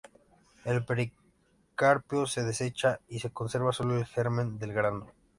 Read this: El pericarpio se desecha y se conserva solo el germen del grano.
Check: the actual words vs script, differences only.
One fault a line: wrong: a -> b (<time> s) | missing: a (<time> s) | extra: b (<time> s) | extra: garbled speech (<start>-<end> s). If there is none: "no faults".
no faults